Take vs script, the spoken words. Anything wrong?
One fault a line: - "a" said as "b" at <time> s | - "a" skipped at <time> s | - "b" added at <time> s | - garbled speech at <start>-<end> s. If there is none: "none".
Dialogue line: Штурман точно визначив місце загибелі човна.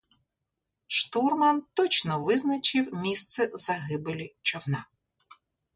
none